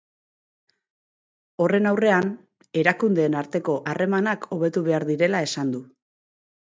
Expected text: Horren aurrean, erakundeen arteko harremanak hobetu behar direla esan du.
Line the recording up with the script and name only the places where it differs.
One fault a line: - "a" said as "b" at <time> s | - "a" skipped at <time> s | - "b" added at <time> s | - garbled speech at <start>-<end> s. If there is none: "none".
none